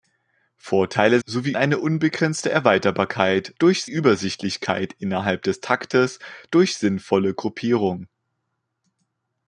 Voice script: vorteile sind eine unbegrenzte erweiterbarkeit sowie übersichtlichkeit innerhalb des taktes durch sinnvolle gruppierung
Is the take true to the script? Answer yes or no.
no